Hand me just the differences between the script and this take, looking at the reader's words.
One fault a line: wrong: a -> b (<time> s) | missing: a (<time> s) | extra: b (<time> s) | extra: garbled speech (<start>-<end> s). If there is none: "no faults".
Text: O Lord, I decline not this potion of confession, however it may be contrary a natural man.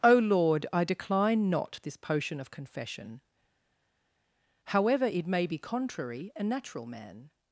no faults